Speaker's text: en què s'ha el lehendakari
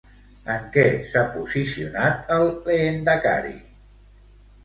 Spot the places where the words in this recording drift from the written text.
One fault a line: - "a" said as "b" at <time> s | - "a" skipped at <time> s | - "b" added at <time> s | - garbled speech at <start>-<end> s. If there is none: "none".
- "posicionat" added at 1.3 s